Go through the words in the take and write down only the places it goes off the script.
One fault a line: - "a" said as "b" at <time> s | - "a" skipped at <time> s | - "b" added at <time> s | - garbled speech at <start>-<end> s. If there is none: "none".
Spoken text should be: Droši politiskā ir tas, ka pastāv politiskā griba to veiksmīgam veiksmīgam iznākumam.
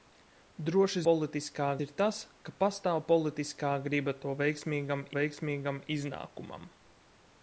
none